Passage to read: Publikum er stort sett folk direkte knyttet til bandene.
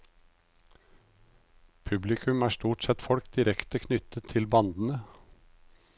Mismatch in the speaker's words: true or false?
false